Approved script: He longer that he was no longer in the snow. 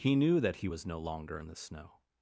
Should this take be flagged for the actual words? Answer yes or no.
yes